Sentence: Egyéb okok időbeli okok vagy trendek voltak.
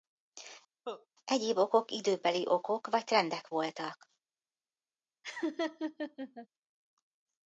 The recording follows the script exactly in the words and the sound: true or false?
false